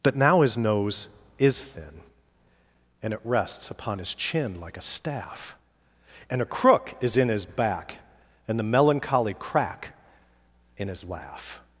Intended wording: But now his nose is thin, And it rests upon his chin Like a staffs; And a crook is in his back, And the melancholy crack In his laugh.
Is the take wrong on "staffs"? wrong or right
wrong